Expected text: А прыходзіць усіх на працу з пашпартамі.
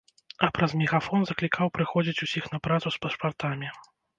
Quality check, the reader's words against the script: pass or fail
fail